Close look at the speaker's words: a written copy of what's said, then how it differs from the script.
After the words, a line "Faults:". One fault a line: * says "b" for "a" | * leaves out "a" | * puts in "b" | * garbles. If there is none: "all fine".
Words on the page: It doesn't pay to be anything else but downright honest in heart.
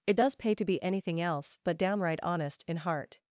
It does pay to be anything else but downright honest in heart.
Faults:
* says "does" for "doesn't"